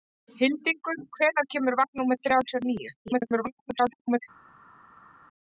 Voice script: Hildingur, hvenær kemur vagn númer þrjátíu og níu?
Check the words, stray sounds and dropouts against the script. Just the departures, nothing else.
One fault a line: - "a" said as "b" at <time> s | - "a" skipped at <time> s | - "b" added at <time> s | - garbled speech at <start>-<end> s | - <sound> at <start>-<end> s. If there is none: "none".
- garbled speech at 3.1-4.2 s